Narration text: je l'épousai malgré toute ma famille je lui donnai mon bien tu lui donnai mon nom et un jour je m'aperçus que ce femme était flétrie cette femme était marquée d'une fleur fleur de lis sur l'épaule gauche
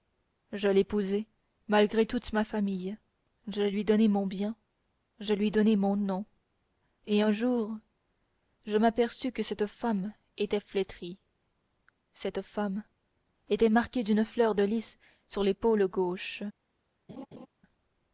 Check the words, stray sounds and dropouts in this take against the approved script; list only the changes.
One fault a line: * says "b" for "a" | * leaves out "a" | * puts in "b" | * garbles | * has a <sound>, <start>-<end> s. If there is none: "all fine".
* says "je" for "tu"
* says "cette" for "ce"
* leaves out "fleur"
* has a laugh, 17.1-17.5 s